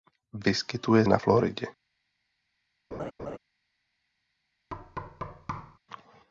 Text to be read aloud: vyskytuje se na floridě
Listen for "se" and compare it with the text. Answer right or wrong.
wrong